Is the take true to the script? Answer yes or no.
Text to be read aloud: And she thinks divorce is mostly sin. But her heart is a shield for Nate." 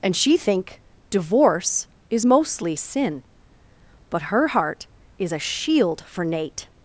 no